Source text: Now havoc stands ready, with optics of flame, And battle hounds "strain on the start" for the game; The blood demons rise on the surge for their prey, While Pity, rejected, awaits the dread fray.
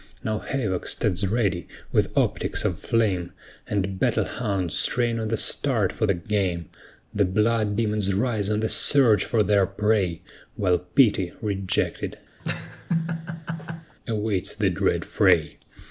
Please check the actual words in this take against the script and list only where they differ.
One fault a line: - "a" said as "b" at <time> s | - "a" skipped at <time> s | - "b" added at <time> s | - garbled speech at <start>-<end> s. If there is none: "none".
none